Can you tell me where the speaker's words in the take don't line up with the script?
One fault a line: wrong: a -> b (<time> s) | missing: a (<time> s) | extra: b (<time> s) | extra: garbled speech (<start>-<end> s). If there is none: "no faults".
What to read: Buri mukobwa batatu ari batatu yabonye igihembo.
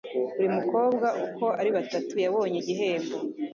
wrong: batatu -> uko (1.2 s)